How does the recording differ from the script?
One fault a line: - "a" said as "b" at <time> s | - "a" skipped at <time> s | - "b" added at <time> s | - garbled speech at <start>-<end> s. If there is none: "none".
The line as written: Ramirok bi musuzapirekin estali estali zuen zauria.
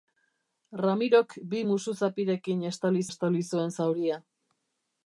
none